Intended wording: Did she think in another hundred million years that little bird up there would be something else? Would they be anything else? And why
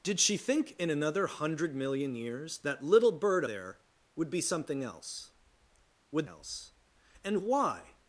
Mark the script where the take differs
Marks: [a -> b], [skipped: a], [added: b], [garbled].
Did she think in another hundred million years that little bird [skipped: up] there would be something else? Would [skipped: they be anything] else? And why